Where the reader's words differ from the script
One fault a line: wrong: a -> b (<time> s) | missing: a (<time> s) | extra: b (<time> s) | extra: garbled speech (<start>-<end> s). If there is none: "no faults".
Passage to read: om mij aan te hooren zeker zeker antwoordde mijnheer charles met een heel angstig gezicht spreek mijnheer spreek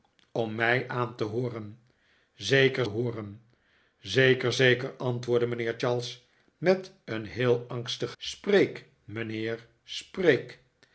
extra: hooren (2.8 s)
extra: zeker (4.5 s)
missing: gezicht (8.1 s)